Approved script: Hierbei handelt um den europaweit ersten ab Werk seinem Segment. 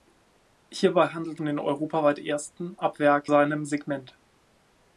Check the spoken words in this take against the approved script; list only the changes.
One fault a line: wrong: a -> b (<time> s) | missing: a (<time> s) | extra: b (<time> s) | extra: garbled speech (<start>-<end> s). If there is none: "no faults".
no faults